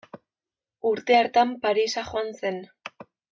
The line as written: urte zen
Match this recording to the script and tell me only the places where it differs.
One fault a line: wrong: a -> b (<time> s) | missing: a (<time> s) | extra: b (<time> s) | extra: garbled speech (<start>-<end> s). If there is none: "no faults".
extra: hartan parisa joan (1.2 s)